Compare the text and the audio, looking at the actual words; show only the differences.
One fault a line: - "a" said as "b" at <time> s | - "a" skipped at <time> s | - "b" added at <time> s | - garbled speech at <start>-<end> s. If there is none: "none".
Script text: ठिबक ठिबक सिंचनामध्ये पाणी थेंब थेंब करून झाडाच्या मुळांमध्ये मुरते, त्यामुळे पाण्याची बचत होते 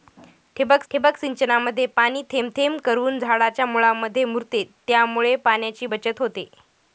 none